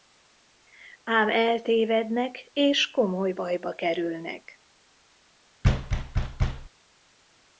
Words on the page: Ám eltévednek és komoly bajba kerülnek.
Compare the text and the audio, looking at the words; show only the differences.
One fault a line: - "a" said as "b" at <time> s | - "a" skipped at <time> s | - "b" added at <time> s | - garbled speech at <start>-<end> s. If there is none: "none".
none